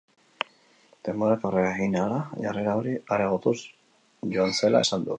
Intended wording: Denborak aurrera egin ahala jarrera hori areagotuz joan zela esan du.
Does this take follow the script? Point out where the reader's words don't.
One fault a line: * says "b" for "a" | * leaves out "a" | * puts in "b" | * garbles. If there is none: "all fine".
all fine